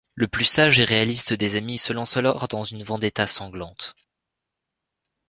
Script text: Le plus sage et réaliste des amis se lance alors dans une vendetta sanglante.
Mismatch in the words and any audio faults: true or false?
false